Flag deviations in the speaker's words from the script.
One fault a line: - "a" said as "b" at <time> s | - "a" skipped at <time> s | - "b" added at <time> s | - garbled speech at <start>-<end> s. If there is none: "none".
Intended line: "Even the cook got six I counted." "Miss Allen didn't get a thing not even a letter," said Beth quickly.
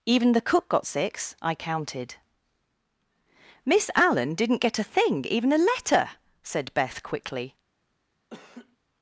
- "not" skipped at 5.2 s